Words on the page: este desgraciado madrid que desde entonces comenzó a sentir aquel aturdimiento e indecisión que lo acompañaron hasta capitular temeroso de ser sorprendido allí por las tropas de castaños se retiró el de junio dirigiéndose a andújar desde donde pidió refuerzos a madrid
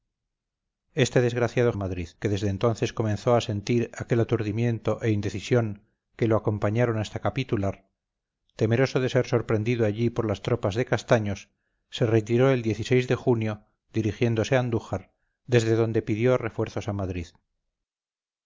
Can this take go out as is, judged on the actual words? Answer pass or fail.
pass